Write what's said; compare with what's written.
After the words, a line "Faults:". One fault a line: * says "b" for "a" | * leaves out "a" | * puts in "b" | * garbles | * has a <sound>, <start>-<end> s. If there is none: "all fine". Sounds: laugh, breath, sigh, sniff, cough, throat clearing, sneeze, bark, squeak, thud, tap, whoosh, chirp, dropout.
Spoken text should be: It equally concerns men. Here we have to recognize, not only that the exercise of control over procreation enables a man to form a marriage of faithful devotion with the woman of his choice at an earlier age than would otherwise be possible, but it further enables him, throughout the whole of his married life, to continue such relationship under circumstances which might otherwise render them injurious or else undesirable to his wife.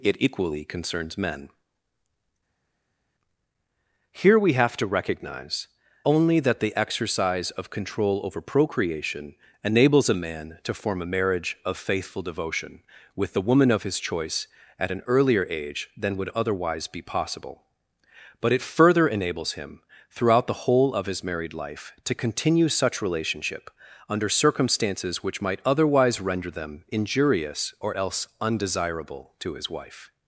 It equally concerns men. Here we have to recognize, only that the exercise of control over procreation enables a man to form a marriage of faithful devotion with the woman of his choice at an earlier age than would otherwise be possible, but it further enables him, throughout the whole of his married life, to continue such relationship under circumstances which might otherwise render them injurious or else undesirable to his wife.
Faults:
* leaves out "not"